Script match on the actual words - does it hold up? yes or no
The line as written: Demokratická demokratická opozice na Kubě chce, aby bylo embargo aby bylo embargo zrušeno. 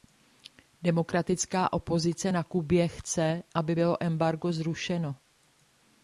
no